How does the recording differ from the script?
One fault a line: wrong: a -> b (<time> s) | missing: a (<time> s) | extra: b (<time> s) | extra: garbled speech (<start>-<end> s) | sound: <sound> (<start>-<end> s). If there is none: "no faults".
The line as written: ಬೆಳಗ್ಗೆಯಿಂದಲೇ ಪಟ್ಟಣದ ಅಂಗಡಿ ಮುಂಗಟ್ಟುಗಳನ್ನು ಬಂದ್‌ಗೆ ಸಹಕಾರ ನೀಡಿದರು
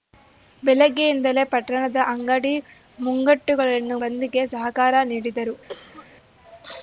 sound: cough (5.7-6.1 s)